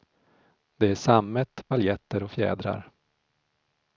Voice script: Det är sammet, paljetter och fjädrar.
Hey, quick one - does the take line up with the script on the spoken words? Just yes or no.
yes